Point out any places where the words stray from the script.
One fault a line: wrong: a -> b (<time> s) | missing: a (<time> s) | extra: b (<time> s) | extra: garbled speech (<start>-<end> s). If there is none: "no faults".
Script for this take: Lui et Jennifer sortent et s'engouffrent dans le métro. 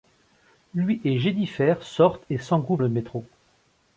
missing: dans (2.8 s)